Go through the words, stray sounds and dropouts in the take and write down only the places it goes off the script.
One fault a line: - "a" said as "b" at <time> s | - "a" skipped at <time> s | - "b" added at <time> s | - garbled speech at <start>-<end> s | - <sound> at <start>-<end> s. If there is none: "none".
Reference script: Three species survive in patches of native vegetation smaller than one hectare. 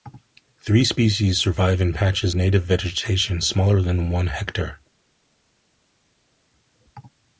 - "of" skipped at 2.4 s